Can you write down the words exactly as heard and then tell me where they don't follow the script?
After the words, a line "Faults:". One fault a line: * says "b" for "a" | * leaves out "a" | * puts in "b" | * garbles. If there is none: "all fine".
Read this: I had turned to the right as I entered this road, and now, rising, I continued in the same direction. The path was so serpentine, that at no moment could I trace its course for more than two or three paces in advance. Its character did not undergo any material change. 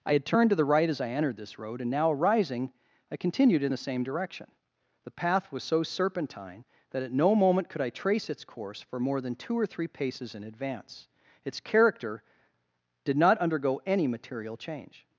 I had turned to the right as I entered this road, and now, rising, I continued in the same direction. The path was so serpentine, that at no moment could I trace its course for more than two or three paces in advance. Its character did not undergo any material change.
Faults:
all fine